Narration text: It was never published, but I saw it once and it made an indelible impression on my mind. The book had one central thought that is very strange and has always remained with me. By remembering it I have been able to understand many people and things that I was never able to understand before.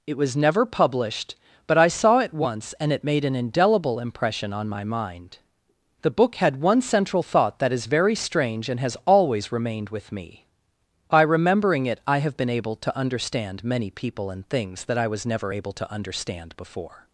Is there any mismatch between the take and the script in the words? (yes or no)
no